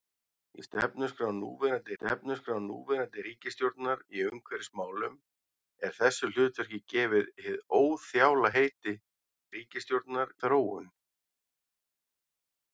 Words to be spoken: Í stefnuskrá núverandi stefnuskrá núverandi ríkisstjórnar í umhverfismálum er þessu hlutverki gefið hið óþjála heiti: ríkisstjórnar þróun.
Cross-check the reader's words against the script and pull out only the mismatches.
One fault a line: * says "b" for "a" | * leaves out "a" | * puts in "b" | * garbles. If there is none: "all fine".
all fine